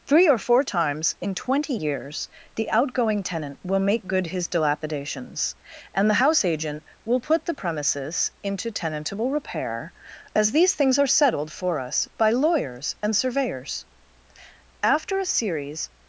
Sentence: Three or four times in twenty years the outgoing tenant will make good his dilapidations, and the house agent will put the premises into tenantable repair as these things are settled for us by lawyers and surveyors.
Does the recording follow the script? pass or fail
fail